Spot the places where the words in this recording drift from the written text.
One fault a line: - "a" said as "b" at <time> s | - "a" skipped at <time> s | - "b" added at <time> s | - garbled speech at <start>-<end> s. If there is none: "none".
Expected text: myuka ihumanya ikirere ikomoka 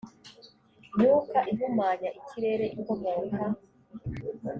none